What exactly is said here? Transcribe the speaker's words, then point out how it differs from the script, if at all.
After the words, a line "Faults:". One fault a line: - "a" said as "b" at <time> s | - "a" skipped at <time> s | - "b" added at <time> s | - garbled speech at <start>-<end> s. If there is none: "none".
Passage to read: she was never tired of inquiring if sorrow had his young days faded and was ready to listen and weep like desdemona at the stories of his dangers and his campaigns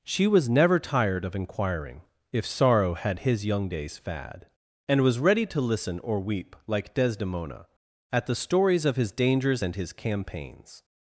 she was never tired of inquiring if sorrow had his young days fad and was ready to listen or weep like desdemona at the stories of his dangers and his campaigns
Faults:
- "faded" said as "fad" at 4.0 s
- "and" said as "or" at 6.0 s